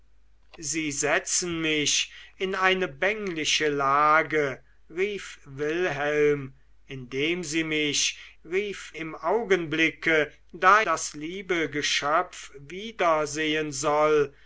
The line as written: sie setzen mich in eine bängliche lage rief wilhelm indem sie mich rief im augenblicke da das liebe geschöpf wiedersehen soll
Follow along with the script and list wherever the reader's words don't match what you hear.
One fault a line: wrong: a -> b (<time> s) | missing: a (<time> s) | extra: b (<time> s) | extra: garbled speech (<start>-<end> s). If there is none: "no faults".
no faults